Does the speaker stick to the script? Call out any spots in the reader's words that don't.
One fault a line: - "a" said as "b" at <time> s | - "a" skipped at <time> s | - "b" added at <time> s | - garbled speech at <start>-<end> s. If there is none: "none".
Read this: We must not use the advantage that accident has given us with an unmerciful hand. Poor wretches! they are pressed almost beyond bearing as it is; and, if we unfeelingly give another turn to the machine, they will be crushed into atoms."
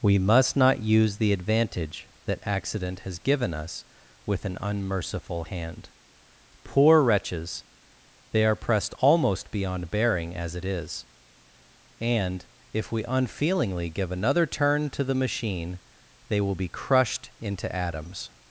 none